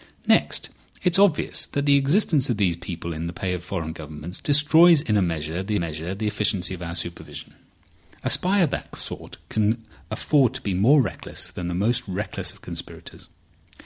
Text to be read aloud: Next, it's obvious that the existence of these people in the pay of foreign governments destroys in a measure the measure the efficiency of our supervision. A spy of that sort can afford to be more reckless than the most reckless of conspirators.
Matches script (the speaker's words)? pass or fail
pass